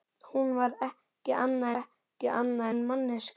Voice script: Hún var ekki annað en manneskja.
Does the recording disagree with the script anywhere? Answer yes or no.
yes